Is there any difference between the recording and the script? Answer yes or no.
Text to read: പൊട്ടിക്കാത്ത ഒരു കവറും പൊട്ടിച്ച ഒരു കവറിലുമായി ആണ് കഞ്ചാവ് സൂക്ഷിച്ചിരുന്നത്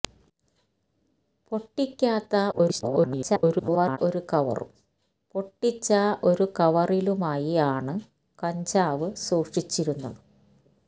yes